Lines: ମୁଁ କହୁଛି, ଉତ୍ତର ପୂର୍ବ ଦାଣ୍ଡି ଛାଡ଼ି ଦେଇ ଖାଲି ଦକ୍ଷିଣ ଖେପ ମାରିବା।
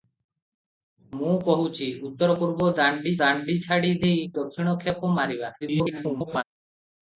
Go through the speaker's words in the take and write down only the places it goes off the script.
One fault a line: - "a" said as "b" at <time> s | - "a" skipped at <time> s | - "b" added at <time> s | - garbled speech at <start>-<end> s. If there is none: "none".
- "ଦାଣ୍ଡି" added at 3.2 s
- "ଖାଲି" skipped at 4.3 s
- garbled speech at 5.6-6.4 s